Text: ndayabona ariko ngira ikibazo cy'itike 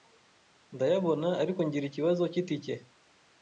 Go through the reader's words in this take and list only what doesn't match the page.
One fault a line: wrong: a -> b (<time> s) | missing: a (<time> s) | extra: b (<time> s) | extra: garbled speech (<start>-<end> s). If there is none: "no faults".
no faults